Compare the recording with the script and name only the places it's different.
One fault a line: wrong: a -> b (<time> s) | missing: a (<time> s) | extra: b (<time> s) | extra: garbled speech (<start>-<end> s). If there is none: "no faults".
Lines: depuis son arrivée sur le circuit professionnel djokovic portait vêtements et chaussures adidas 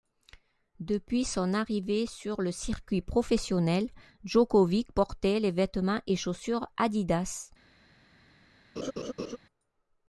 extra: les (5.4 s)